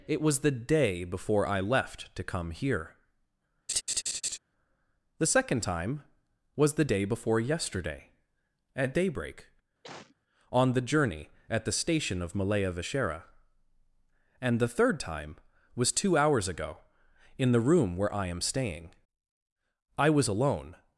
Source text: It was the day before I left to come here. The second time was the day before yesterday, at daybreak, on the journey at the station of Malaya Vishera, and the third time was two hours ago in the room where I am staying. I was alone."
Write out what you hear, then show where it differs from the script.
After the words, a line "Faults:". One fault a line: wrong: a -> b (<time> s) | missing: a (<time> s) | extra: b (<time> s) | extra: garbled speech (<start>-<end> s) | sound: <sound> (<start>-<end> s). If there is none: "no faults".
It was the day before I left to come here. The second time was the day before yesterday, at daybreak, on the journey at the station of Malaya Vishera, and the third time was two hours ago in the room where I am staying. I was alone."
Faults:
sound: laugh (3.7-4.4 s)
sound: cough (9.8-10.2 s)